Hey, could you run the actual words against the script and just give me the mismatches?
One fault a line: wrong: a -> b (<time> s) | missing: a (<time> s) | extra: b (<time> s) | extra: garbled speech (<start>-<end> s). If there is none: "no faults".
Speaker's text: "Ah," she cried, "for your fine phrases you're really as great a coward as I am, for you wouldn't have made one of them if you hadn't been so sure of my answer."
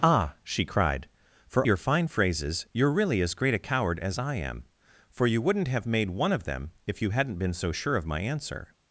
no faults